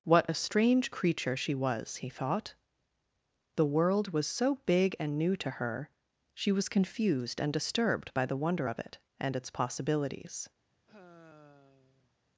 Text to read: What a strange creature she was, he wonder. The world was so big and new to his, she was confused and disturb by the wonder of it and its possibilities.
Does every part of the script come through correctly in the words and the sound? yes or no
no